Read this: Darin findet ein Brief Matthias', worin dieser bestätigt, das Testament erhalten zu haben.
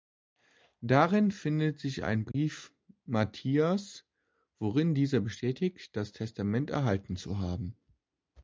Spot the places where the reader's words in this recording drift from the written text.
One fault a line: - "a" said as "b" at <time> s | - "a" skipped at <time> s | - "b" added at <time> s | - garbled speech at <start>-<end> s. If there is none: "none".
- "sich" added at 1.8 s